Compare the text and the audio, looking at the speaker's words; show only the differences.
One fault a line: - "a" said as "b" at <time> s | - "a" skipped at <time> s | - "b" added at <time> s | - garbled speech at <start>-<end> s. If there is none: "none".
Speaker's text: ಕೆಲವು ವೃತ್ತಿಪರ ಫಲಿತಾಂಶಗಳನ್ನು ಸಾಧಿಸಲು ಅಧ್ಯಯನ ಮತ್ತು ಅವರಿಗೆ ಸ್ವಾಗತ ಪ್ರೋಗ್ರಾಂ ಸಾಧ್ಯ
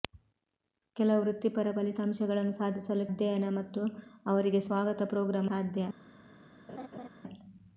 none